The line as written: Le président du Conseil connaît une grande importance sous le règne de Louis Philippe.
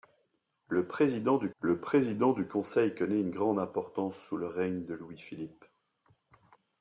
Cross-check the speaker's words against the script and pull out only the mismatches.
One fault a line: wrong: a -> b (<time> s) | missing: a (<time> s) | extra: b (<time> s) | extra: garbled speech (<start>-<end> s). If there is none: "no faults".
extra: le président du (1.6 s)